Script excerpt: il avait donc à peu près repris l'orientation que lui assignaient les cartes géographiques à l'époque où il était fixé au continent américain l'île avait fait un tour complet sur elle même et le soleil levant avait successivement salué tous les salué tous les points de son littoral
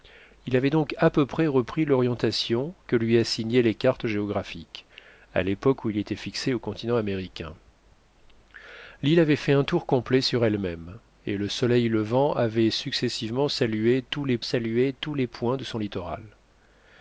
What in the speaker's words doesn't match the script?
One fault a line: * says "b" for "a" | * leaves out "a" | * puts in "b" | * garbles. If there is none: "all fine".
all fine